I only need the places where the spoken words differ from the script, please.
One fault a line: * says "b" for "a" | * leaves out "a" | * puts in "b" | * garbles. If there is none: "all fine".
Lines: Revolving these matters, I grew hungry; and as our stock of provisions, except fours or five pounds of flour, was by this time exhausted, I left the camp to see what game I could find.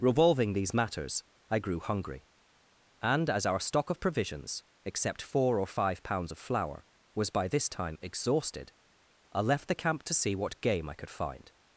* says "four" for "fours"